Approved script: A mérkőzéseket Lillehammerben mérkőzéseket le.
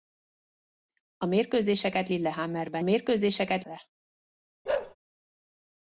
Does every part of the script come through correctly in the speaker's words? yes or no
yes